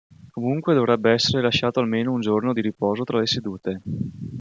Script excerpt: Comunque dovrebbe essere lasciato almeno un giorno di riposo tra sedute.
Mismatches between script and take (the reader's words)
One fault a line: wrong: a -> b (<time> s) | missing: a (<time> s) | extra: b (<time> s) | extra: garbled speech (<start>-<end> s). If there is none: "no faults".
extra: le (3.2 s)